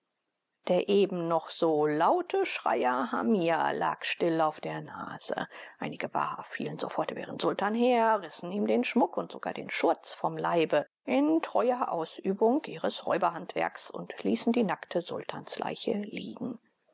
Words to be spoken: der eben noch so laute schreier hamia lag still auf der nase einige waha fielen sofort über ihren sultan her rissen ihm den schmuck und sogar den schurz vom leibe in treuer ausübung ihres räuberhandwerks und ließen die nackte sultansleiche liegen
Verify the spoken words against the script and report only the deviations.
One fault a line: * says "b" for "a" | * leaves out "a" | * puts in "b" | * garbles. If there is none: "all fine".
all fine